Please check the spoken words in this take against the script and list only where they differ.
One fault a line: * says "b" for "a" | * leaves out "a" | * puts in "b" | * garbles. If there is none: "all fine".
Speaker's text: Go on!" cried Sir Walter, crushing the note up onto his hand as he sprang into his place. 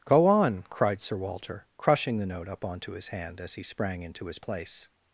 all fine